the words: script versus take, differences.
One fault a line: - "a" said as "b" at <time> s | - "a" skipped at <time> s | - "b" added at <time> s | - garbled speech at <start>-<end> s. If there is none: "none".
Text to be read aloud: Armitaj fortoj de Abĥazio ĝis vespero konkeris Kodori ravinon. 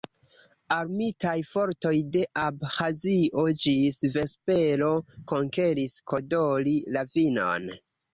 none